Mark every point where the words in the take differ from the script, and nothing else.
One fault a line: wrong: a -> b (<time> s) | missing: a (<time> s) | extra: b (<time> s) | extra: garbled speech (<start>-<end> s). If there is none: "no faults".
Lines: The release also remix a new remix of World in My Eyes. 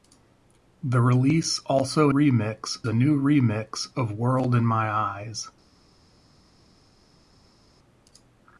no faults